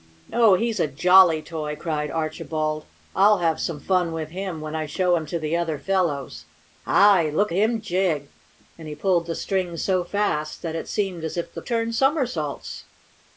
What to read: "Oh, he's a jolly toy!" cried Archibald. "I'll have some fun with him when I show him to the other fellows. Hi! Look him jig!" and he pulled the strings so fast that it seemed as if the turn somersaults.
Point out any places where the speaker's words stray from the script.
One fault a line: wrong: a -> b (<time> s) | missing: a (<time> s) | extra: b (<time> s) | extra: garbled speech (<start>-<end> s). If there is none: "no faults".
no faults